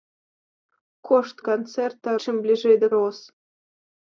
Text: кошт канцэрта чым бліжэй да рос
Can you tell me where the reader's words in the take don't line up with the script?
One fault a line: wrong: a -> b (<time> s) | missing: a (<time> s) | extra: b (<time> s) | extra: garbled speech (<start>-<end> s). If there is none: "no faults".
no faults